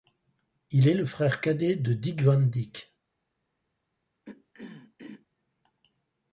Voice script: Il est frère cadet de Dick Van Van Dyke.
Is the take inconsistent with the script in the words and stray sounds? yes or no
yes